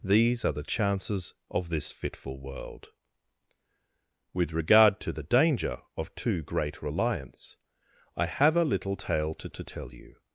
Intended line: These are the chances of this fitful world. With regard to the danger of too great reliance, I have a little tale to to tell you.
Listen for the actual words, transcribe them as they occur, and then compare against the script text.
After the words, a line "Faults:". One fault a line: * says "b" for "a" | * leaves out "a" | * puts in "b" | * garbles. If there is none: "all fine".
These are the chances of this fitful world. With regard to the danger of too great reliance, I have a little tale to to tell you.
Faults:
all fine